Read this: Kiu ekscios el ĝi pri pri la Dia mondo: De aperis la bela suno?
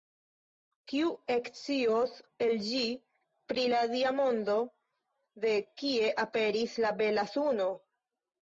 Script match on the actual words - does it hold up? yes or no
no